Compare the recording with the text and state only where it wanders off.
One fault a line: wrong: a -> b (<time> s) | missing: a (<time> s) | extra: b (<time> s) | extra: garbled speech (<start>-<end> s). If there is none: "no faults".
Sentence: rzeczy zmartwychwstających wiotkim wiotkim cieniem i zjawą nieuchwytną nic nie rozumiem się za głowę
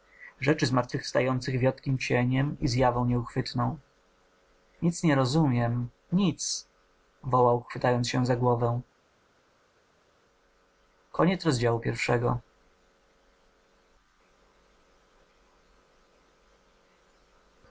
missing: wiotkim (2.0 s)
extra: nic wołał chwytając (6.1 s)